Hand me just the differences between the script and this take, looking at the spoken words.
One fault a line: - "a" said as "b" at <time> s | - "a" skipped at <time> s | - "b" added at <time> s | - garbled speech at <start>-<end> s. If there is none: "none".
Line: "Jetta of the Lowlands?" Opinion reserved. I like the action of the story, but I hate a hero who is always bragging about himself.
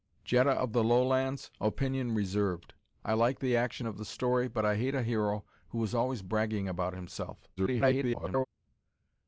- garbled speech at 7.6-8.5 s